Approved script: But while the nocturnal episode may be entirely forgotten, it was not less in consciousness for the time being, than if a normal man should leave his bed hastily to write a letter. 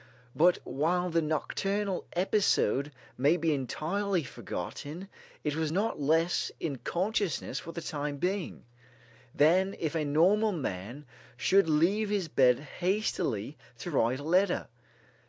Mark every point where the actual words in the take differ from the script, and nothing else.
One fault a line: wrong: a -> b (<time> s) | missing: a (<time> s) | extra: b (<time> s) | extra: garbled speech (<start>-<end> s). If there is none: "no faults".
no faults